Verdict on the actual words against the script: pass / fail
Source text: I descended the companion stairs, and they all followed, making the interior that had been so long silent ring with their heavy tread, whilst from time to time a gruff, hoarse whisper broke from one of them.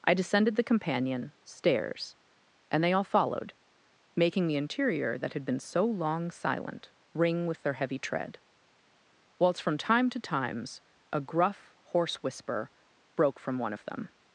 fail